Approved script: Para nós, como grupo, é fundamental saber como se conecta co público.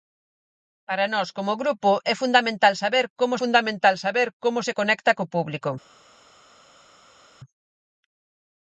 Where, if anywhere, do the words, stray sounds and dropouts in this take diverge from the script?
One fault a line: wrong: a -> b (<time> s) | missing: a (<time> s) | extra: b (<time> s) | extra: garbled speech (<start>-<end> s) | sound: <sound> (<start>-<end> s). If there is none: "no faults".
extra: fundamental saber como (3.4 s)